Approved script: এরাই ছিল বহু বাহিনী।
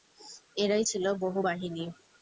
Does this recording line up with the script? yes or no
yes